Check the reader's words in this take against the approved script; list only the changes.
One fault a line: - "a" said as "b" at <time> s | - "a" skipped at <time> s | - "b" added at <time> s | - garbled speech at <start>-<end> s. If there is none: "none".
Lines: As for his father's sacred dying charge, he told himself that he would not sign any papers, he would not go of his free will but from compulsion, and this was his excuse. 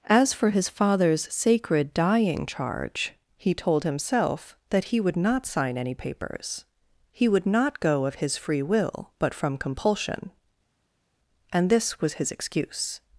none